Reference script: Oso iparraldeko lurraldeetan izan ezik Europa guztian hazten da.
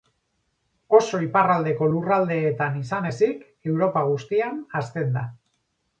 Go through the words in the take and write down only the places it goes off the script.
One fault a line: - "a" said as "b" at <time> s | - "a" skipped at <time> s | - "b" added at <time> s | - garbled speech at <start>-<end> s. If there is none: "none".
none